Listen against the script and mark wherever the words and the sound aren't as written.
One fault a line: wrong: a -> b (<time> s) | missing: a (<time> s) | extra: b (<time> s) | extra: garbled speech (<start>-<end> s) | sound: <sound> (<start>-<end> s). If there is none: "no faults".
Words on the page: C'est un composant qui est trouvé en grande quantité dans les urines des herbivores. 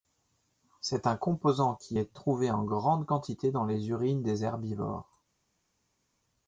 no faults